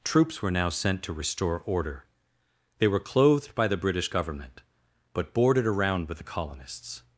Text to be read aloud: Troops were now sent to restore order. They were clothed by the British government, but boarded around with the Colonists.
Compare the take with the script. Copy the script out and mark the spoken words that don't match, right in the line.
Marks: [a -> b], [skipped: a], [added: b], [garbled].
Troops were now sent to restore order. They were clothed by the British government, but boarded around with the Colonists.